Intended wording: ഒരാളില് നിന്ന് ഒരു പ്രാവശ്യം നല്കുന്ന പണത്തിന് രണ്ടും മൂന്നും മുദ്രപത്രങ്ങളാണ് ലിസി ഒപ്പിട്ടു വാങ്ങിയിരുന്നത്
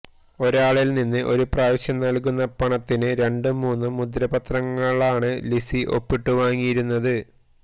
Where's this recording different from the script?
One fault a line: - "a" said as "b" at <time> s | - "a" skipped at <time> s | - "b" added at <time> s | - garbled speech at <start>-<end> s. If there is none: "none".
none